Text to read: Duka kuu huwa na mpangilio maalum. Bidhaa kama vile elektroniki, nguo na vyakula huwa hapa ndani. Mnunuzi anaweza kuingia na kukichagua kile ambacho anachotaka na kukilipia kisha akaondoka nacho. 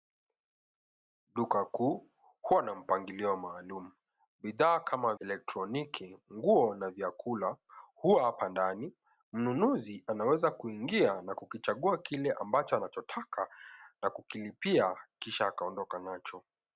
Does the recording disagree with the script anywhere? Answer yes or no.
yes